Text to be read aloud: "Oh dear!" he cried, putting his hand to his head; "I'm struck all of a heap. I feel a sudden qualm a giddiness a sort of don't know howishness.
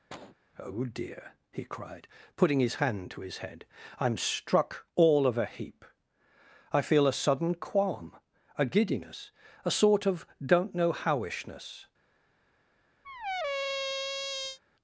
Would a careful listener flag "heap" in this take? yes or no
no